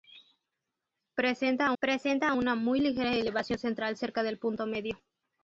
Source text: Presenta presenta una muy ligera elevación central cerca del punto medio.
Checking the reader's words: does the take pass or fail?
pass